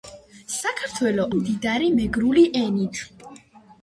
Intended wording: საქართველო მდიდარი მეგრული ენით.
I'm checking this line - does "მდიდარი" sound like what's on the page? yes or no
yes